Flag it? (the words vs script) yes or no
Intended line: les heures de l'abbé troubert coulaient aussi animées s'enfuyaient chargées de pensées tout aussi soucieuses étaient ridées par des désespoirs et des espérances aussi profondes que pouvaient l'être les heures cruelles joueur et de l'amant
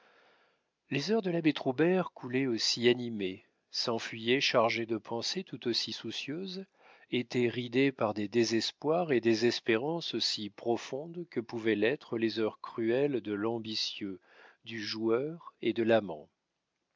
yes